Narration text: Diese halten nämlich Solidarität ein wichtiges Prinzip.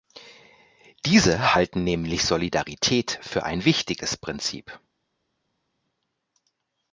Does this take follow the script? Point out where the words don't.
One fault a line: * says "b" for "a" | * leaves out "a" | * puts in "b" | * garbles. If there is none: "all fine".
* puts in "für"